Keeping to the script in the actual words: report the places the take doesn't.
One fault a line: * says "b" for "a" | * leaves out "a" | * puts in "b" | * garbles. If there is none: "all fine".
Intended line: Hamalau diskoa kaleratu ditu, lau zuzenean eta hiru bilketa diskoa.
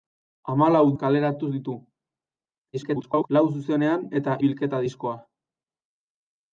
* leaves out "diskoa"
* garbles
* leaves out "hiru"